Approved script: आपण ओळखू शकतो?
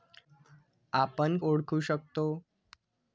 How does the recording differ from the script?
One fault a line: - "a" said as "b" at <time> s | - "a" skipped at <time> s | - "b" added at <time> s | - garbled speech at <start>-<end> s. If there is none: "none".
none